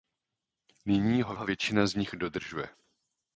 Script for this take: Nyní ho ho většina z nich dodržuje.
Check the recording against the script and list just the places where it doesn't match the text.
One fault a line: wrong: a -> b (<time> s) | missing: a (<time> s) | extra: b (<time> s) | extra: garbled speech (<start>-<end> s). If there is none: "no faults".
no faults